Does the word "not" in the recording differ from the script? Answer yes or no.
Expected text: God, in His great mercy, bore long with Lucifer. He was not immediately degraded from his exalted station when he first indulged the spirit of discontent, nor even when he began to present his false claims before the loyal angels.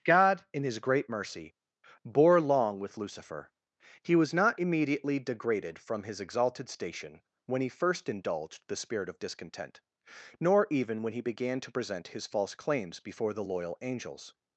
no